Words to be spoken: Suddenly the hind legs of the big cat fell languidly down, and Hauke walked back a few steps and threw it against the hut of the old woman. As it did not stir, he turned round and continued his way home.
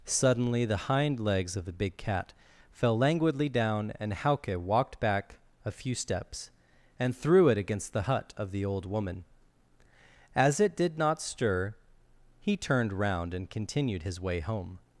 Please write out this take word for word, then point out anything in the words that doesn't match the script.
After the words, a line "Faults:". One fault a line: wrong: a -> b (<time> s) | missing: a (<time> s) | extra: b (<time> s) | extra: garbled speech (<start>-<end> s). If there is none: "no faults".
Suddenly the hind legs of the big cat fell languidly down, and Hauke walked back a few steps and threw it against the hut of the old woman. As it did not stir, he turned round and continued his way home.
Faults:
no faults